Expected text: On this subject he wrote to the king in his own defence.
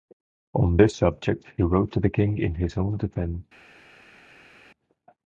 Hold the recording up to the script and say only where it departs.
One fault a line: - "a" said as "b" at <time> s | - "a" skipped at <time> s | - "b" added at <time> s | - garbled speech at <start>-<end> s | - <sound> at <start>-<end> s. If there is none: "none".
none